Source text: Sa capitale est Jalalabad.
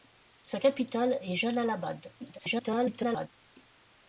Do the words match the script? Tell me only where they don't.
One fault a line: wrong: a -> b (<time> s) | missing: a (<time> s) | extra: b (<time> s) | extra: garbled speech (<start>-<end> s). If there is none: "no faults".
extra: garbled speech (2.2-3.3 s)